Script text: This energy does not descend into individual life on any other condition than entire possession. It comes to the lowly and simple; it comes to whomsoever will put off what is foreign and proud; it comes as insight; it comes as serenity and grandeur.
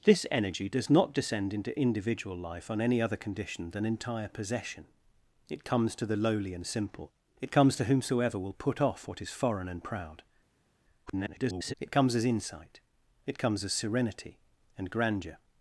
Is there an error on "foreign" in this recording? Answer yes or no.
no